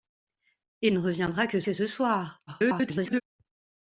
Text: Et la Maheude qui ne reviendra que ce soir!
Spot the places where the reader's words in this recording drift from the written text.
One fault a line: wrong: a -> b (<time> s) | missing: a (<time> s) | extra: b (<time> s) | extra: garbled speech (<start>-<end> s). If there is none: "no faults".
missing: la Maheude qui (0.9 s)
extra: que (1.6 s)
extra: garbled speech (2.5-3.2 s)